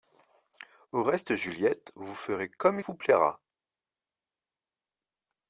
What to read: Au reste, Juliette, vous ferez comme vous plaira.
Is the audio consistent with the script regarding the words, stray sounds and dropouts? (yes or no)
yes